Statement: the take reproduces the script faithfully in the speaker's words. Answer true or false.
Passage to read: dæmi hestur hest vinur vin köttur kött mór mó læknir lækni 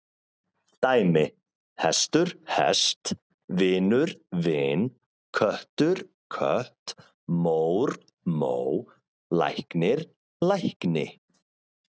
true